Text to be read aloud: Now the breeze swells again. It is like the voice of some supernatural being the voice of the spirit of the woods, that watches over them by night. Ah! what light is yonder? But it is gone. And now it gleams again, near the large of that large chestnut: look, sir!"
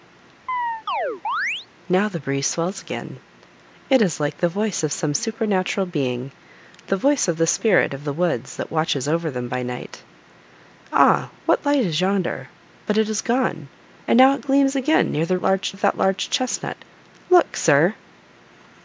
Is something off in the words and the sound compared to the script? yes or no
yes